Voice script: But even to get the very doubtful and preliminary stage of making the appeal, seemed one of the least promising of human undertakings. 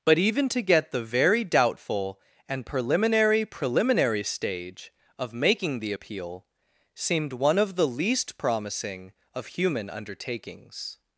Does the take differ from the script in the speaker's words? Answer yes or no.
yes